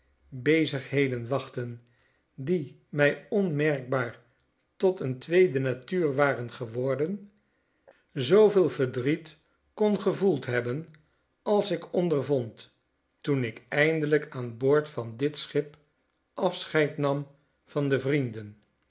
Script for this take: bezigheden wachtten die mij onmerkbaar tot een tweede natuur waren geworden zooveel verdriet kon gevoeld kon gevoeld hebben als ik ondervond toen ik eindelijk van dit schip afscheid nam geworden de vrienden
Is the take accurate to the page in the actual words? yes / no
no